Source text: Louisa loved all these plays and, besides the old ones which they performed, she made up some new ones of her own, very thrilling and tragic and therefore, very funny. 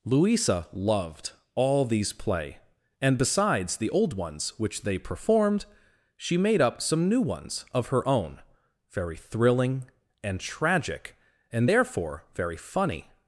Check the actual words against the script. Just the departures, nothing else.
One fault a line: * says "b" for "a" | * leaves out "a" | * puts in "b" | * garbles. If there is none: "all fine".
* says "play" for "plays"